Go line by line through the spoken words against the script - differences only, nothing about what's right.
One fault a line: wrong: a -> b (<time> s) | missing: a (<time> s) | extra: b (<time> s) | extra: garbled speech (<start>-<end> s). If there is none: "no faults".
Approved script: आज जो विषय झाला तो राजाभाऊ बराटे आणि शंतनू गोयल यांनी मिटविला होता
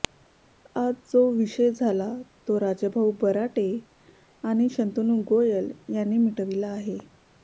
wrong: होता -> आहे (6.7 s)